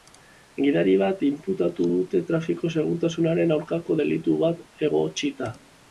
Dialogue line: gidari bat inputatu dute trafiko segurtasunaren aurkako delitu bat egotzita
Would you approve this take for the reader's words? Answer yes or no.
yes